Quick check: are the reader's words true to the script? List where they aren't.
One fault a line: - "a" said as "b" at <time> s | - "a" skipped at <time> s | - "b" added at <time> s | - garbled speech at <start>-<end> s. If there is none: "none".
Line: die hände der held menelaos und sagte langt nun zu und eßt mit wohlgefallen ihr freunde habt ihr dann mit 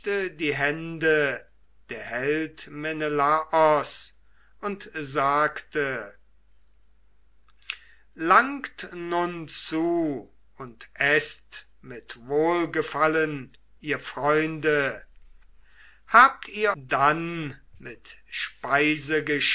none